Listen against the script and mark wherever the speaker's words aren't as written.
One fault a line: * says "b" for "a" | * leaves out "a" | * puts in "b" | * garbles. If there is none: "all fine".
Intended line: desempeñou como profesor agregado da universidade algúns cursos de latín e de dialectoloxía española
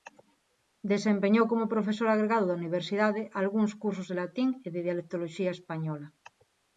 all fine